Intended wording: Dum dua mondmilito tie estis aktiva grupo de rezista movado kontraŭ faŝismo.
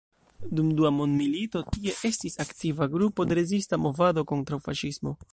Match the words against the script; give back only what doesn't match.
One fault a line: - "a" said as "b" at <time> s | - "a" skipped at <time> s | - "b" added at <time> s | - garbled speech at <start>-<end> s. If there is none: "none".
none